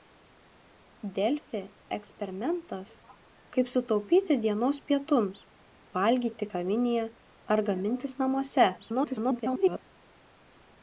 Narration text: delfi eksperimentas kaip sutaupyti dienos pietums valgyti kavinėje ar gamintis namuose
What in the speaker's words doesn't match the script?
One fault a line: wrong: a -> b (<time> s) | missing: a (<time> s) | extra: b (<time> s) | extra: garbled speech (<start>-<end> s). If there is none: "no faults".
extra: garbled speech (8.8-9.8 s)